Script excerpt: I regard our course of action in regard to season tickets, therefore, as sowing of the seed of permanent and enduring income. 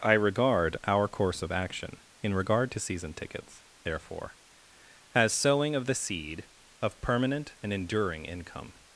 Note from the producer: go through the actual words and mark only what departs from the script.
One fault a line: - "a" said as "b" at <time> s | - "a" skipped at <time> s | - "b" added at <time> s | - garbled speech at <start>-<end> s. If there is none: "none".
none